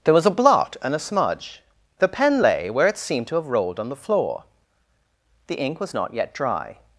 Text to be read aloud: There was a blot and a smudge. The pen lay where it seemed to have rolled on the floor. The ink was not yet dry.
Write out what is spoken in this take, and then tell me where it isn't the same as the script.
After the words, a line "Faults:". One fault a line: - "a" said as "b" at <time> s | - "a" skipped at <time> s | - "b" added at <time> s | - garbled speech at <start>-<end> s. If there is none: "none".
There was a blot and a smudge. The pen lay where it seemed to have rolled on the floor. The ink was not yet dry.
Faults:
none